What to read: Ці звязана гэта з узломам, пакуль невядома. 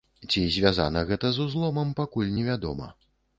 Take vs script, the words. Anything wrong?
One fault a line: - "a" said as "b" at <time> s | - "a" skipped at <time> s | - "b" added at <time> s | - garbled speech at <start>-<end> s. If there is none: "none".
none